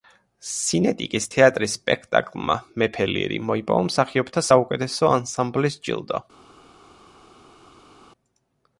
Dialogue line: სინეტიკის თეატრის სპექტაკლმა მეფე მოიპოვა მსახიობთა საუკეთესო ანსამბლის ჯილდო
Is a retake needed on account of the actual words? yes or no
yes